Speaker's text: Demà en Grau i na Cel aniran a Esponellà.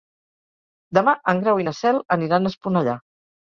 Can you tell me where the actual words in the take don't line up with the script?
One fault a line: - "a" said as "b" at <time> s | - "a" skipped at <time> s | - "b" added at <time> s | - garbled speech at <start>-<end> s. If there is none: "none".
none